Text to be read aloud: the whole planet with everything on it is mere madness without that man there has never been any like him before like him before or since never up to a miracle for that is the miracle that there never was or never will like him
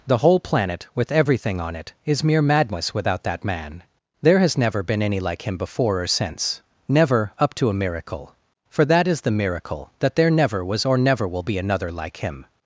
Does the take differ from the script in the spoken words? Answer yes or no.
yes